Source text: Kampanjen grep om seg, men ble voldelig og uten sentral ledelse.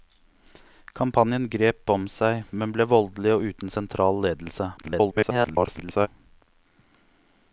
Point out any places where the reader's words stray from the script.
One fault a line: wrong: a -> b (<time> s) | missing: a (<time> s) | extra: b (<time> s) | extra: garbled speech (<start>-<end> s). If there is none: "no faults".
extra: garbled speech (4.8-6.1 s)